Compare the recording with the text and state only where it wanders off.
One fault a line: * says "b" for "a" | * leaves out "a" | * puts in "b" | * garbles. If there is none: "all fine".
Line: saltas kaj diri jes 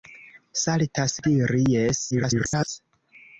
* leaves out "kaj"
* garbles